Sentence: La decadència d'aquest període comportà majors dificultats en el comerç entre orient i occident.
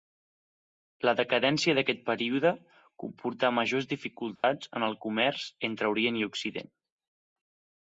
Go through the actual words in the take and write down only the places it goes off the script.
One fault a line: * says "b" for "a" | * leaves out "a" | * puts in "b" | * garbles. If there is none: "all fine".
all fine